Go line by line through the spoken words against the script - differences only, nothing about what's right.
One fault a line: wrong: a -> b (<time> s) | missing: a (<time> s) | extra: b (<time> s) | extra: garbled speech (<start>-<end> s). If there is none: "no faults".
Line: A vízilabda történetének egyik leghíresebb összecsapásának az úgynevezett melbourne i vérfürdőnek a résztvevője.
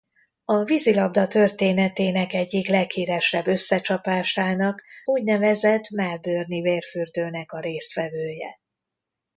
missing: az (4.8 s)